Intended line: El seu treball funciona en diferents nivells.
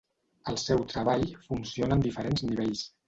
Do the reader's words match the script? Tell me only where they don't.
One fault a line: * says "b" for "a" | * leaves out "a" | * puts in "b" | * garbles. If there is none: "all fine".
all fine